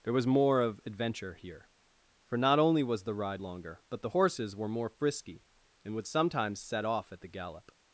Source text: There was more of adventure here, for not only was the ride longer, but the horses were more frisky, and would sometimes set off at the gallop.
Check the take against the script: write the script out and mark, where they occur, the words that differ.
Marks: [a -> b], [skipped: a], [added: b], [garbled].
There was more of adventure here, for not only was the ride longer, but the horses were more frisky, and would sometimes set off at the gallop.